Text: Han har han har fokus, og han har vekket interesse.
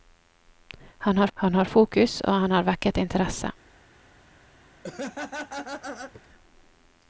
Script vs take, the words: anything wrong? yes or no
no